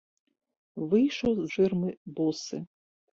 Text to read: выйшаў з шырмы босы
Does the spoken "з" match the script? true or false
true